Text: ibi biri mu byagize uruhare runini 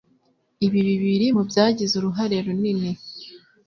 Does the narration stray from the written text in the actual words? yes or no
no